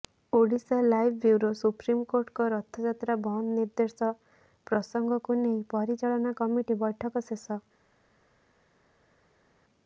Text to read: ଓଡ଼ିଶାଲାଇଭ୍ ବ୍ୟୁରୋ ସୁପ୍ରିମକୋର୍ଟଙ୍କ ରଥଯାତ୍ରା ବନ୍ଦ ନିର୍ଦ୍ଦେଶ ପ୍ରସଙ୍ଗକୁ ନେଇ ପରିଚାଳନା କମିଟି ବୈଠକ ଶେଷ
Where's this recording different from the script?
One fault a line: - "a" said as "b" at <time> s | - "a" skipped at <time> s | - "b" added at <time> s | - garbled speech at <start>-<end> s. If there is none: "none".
none